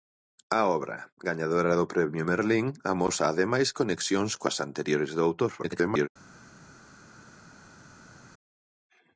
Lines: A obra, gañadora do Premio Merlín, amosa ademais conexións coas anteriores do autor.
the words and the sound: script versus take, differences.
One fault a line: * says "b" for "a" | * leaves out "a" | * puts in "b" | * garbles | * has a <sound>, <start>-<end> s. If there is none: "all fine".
* garbles